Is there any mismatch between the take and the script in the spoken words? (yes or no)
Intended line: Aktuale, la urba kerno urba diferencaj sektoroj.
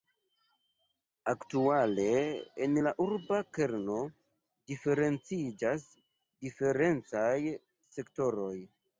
yes